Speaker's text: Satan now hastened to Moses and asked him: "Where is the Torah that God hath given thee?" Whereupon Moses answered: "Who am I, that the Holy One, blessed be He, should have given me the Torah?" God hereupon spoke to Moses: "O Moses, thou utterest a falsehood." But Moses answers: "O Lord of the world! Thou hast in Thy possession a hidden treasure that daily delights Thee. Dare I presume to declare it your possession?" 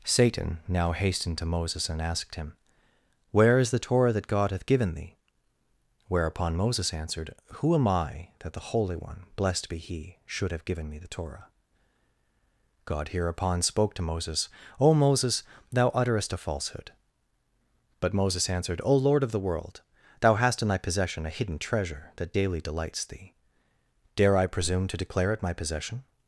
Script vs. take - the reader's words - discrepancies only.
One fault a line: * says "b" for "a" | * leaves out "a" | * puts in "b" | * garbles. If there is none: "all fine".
* says "answered" for "answers"
* says "my" for "your"